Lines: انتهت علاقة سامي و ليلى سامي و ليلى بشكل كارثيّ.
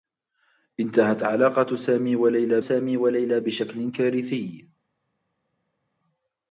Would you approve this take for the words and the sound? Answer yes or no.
yes